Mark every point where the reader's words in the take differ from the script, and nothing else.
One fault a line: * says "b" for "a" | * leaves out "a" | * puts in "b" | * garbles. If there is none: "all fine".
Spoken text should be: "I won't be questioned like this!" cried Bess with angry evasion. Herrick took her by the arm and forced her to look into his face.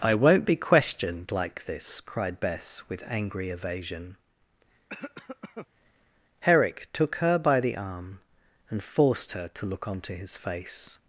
* says "onto" for "into"